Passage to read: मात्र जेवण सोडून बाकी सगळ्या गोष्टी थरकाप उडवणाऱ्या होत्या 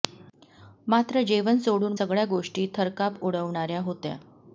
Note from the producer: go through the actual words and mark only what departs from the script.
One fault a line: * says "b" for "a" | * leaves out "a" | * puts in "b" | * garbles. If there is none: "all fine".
* leaves out "बाकी"